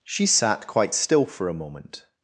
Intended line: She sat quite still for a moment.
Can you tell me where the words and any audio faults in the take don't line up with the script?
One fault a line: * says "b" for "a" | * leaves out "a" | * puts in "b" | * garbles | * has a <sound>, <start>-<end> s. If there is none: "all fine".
all fine